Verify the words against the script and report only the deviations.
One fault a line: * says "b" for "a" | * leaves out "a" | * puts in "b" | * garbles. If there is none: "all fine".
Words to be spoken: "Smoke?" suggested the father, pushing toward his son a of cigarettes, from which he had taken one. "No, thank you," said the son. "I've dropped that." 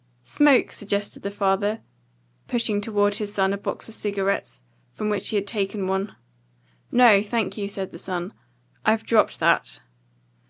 * puts in "box"